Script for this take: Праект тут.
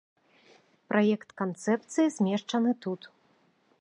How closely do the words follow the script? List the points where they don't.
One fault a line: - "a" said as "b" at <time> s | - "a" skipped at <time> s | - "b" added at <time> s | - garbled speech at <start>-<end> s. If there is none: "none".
- "канцэпцыі змешчаны" added at 1.4 s